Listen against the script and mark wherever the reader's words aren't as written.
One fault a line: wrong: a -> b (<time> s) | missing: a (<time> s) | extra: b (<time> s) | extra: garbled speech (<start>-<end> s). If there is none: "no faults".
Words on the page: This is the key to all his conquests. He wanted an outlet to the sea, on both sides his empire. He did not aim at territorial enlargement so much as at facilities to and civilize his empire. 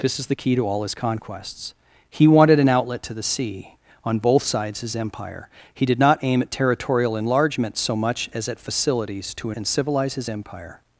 no faults